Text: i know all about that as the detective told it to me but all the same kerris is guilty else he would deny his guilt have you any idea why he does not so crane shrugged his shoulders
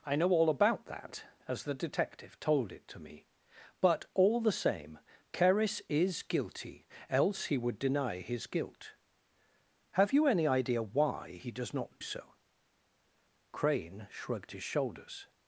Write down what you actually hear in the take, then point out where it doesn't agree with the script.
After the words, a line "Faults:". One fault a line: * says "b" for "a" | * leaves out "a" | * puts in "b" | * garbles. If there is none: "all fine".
i know all about that as the detective told it to me but all the same kerris is guilty else he would deny his guilt have you any idea why he does not so crane shrugged his shoulders
Faults:
all fine